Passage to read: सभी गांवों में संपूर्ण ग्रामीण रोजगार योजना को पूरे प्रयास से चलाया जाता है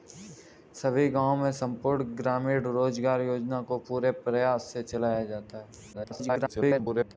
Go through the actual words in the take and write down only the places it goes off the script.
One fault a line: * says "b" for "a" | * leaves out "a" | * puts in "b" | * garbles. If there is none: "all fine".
* garbles